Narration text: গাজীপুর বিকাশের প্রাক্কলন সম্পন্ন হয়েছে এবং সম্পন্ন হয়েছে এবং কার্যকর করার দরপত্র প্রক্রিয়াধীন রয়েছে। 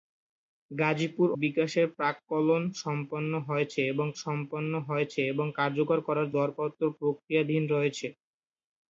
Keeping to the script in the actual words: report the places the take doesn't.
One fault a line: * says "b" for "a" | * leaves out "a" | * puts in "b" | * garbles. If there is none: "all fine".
all fine